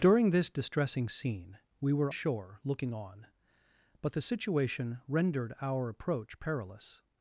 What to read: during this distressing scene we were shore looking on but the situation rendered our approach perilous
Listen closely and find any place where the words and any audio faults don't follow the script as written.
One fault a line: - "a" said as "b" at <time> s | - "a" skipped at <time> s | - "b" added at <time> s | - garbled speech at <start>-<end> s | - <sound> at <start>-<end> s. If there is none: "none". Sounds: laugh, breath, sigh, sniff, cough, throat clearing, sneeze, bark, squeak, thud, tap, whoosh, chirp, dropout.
none